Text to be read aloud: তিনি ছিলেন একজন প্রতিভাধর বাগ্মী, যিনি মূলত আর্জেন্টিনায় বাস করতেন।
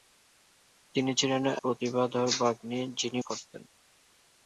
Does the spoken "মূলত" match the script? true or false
false